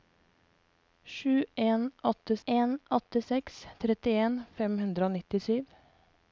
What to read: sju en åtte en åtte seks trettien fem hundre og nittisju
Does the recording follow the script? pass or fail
pass